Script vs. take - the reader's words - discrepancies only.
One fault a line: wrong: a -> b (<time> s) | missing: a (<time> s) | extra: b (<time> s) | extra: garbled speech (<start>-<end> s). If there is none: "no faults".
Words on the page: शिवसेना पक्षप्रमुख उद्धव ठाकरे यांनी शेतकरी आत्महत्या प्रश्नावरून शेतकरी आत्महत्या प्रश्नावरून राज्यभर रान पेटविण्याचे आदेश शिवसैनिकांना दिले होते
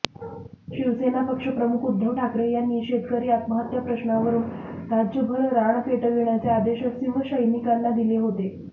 missing: शेतकरी आत्महत्या प्रश्नावरून (4.4 s)